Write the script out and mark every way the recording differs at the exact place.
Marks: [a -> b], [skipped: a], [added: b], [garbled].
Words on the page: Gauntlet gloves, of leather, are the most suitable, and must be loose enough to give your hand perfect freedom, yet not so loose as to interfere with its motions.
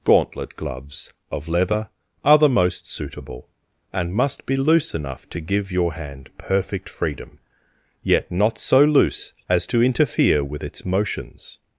Gauntlet gloves, of leather, are the most suitable, and must be loose enough to give your hand perfect freedom, yet not so loose as to interfere with its motions.